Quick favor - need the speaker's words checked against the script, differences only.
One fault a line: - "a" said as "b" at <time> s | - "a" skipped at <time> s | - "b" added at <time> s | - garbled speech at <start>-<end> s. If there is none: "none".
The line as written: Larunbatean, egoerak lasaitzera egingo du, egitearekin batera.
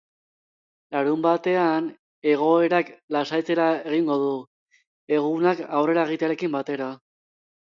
- "egunak aurrera" added at 5.2 s